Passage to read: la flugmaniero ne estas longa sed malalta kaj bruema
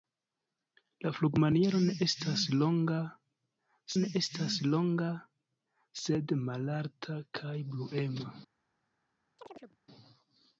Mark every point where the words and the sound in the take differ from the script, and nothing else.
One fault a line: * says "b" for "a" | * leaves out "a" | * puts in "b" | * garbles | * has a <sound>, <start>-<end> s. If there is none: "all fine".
* puts in "ne estas longa"
* has a chirp, 9.4-9.8 s